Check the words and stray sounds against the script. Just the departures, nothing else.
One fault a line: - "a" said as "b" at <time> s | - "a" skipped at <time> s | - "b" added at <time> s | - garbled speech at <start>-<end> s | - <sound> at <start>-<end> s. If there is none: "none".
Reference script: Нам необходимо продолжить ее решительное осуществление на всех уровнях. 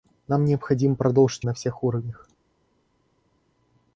- "ее решительное осуществление" skipped at 1.5 s